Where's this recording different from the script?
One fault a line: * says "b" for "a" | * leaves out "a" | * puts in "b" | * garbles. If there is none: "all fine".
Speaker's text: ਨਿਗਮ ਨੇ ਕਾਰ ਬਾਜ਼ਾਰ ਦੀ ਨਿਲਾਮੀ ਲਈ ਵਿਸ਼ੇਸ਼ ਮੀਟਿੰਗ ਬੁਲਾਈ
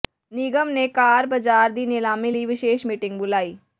all fine